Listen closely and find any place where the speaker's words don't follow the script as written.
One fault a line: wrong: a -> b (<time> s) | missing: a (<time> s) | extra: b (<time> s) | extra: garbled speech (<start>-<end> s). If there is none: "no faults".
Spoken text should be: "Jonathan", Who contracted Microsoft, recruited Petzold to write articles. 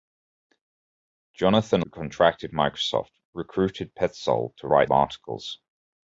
no faults